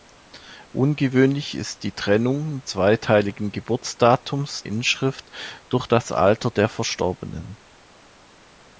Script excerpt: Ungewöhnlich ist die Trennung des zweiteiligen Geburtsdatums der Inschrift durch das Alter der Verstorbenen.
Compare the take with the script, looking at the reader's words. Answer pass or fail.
fail